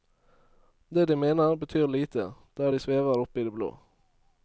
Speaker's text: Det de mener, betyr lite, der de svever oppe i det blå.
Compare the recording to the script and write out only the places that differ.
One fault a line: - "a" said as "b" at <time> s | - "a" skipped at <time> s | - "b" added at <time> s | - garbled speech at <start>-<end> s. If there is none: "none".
none